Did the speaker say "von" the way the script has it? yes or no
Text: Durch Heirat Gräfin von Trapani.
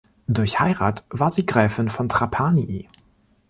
yes